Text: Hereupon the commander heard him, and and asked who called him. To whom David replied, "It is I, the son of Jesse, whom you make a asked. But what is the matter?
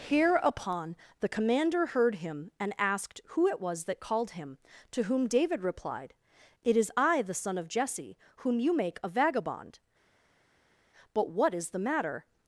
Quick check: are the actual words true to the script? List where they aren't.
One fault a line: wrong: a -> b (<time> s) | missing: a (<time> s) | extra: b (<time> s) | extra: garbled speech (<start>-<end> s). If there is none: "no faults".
missing: and (2.7 s)
extra: it was that (3.5 s)
wrong: asked -> vagabond (9.1 s)